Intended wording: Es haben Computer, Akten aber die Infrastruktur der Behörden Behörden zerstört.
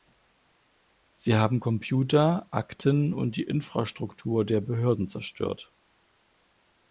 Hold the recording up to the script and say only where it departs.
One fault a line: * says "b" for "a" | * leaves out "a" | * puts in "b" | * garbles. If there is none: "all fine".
* says "Sie" for "Es"
* says "und" for "aber"
* leaves out "Behörden"